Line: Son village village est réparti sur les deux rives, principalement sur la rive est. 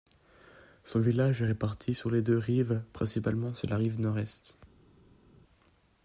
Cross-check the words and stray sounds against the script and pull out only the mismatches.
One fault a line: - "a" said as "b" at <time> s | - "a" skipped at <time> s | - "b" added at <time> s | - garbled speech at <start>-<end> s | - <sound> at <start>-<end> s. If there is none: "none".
- "village" skipped at 1.4 s
- "nord" added at 4.0 s